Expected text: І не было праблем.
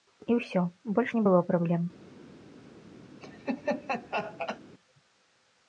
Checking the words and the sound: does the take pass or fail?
fail